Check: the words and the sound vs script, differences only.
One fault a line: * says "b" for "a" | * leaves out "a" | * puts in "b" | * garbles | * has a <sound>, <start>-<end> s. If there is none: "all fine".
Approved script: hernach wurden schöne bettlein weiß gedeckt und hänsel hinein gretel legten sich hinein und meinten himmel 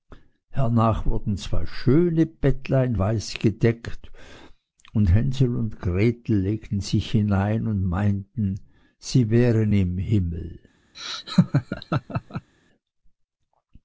* puts in "zwei"
* says "und" for "hinein"
* puts in "sie wären im"
* has a laugh, 10.9-12.5 s